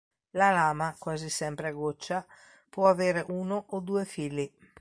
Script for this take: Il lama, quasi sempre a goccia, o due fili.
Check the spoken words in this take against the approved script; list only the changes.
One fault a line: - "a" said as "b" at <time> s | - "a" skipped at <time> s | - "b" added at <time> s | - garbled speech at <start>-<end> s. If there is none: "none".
- "Il" said as "La" at 0.3 s
- "può avere uno" added at 2.7 s